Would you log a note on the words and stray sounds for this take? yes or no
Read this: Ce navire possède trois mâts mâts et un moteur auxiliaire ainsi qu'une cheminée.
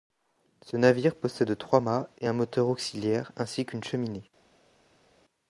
yes